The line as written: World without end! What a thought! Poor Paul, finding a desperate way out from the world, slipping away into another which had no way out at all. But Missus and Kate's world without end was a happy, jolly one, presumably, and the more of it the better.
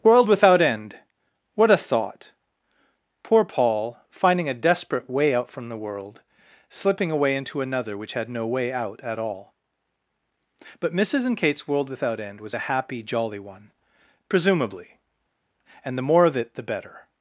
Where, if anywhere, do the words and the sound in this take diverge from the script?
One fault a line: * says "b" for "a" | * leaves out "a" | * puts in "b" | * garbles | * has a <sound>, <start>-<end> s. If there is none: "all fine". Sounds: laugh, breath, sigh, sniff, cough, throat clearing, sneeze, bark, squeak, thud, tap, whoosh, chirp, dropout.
all fine